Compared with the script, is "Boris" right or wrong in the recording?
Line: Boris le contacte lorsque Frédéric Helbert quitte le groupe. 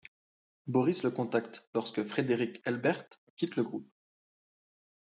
right